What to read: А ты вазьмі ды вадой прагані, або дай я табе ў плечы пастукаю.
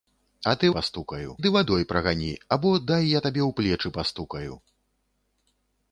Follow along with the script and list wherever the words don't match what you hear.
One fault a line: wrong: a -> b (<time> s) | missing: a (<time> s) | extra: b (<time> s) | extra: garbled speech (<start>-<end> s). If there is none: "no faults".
wrong: вазьмі -> пастукаю (0.8 s)